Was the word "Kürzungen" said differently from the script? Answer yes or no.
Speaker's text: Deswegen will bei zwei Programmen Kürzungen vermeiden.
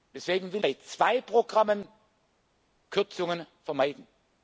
no